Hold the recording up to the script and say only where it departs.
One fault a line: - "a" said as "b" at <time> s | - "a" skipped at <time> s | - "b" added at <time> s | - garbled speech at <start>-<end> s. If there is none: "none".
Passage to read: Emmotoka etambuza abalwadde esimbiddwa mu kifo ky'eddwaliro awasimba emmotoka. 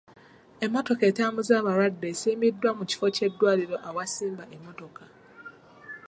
none